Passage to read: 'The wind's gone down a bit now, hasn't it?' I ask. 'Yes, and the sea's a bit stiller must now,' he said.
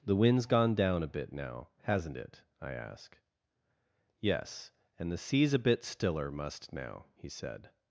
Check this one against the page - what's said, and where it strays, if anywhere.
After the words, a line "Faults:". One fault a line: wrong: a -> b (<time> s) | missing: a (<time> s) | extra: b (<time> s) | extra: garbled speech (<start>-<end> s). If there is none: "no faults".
'The wind's gone down a bit now, hasn't it?' I ask. 'Yes, and the sea's a bit stiller must now,' he said.
Faults:
no faults